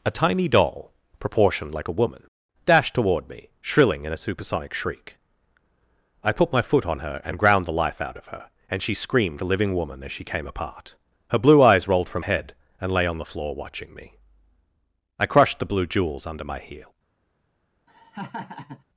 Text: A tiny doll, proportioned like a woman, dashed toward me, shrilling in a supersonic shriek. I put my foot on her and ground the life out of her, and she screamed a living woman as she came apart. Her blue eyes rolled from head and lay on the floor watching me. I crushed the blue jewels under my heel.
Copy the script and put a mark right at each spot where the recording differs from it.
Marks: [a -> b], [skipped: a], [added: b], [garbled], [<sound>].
A tiny doll, proportioned like a woman, dashed toward me, shrilling in a supersonic shriek. I put my foot on her and ground the life out of her, and she screamed a living woman as she came apart. Her blue eyes rolled from head and lay on the floor watching me. I crushed the blue jewels under my heel. [laugh]